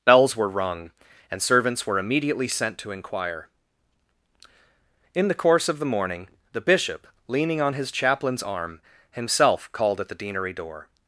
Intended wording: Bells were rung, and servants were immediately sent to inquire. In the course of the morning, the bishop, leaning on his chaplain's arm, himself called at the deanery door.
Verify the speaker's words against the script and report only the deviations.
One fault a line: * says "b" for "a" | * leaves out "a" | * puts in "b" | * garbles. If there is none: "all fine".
all fine